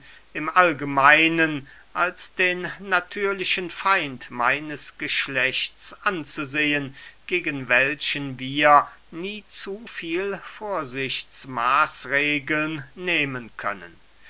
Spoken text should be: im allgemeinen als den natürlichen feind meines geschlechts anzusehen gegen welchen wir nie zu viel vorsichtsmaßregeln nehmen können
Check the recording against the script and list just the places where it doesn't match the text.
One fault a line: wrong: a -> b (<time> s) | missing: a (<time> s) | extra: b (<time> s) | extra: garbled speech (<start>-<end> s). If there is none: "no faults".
no faults